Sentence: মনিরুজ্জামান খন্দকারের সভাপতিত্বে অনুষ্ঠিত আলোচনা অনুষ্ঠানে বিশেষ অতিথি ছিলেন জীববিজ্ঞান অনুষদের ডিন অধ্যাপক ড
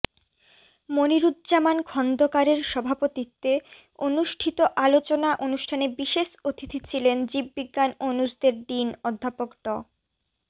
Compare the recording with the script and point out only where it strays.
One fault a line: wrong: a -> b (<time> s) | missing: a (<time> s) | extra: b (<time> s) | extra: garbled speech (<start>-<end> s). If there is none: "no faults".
no faults